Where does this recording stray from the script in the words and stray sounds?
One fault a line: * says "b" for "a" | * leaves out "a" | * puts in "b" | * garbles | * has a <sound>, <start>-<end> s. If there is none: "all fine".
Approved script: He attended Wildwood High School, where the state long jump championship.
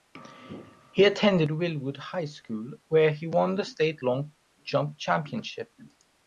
* puts in "he won"